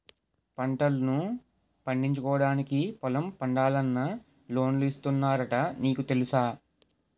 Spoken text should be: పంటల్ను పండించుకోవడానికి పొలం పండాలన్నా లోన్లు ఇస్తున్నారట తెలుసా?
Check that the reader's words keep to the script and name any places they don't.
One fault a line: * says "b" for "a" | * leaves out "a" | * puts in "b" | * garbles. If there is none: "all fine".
* puts in "నీకు"